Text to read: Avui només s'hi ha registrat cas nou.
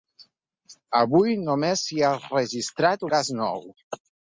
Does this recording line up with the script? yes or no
yes